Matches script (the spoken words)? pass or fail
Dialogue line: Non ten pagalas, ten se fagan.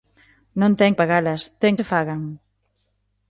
pass